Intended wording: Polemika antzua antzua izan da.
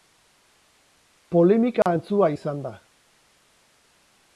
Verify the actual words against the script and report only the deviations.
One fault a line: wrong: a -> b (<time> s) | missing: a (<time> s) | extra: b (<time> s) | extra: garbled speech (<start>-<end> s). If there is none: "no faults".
missing: antzua (2.3 s)